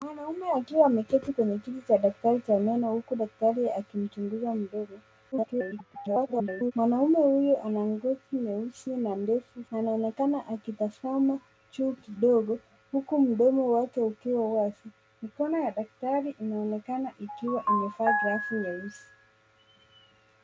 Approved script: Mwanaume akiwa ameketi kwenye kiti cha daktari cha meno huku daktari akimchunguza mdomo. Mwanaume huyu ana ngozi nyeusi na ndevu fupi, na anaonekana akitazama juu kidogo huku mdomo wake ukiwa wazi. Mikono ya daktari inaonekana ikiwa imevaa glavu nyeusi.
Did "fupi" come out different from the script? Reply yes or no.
yes